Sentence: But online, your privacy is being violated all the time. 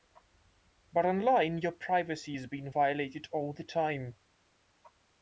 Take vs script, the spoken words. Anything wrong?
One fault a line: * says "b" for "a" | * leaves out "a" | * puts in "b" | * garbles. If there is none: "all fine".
all fine